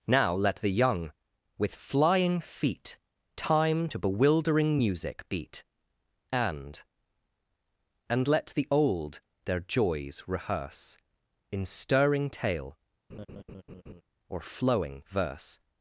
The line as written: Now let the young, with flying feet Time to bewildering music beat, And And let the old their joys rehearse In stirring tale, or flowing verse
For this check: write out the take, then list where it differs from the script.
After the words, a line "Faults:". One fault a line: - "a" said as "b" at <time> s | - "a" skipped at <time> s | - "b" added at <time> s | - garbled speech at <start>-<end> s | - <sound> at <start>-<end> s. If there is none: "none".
Now let the young, with flying feet Time to bewildering music beat, And And let the old their joys rehearse In stirring tale, or flowing verse
Faults:
- laugh at 13.1-14.0 s